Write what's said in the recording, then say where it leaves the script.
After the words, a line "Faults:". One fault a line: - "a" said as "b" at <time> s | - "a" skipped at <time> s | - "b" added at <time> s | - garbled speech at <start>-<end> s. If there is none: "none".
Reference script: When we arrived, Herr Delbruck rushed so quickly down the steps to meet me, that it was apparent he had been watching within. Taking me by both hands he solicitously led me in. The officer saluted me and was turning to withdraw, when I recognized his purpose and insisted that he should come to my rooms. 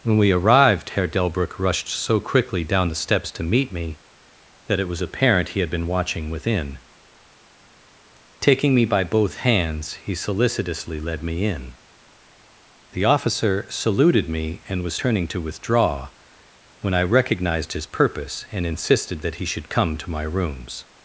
When we arrived, Herr Delbruck rushed so quickly down the steps to meet me, that it was apparent he had been watching within. Taking me by both hands he solicitously led me in. The officer saluted me and was turning to withdraw, when I recognized his purpose and insisted that he should come to my rooms.
Faults:
none